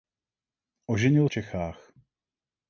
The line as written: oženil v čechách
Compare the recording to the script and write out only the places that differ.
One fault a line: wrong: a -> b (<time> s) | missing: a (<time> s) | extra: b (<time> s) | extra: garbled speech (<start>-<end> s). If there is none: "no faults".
no faults